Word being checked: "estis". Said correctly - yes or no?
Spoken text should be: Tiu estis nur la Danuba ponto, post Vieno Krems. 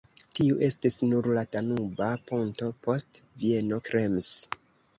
yes